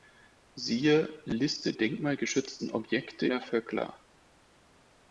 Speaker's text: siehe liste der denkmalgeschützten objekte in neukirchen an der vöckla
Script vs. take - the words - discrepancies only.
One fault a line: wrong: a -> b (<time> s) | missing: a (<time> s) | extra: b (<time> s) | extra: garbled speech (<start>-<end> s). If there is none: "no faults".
missing: der (1.7 s)
missing: in neukirchen an (3.3 s)